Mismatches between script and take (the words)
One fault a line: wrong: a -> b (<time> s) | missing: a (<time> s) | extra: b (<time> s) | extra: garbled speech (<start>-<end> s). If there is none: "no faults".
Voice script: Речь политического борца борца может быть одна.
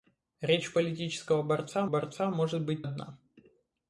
no faults